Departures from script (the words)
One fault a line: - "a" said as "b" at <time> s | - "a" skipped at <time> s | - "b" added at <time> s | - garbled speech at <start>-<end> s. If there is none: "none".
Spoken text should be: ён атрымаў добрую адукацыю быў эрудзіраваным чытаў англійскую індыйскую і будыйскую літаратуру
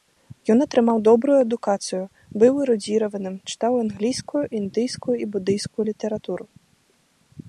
none